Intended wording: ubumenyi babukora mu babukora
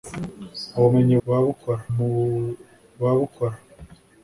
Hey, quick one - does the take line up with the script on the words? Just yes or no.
yes